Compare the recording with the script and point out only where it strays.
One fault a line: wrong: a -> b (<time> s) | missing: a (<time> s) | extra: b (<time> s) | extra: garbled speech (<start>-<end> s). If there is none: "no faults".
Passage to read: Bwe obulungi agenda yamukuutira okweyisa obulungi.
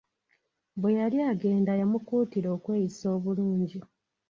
wrong: obulungi -> yali (1.0 s)